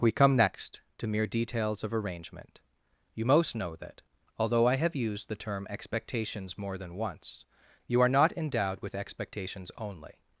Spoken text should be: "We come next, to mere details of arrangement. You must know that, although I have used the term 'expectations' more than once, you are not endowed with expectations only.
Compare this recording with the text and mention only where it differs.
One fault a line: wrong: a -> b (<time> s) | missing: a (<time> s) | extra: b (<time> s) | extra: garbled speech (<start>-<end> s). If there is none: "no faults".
wrong: must -> most (3.2 s)